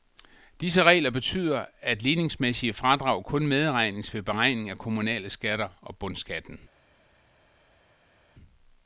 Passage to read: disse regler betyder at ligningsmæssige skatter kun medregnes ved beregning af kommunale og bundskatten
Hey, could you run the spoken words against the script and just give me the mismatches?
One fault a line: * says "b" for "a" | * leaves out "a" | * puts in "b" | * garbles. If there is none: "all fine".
* says "fradrag" for "skatter"
* puts in "skatter"